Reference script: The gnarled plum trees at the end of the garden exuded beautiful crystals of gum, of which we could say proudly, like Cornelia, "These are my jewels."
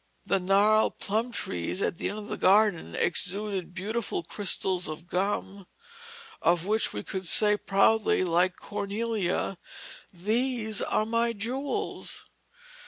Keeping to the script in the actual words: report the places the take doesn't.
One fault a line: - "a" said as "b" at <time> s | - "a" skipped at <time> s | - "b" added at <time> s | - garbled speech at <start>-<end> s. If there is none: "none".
none